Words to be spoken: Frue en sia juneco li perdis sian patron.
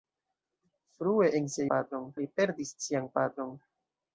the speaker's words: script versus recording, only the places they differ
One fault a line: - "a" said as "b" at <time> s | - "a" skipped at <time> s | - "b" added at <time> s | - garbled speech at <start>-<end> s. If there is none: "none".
- "juneco" said as "patron" at 1.7 s